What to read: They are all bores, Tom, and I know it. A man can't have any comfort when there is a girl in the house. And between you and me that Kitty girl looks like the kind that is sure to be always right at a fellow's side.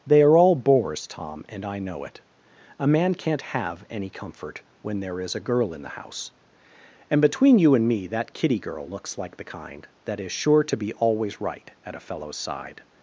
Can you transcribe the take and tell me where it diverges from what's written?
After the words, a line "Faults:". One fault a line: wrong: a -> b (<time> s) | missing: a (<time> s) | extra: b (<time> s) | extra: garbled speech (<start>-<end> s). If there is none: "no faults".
They are all bores, Tom, and I know it. A man can't have any comfort when there is a girl in the house. And between you and me that Kitty girl looks like the kind that is sure to be always right at a fellow's side.
Faults:
no faults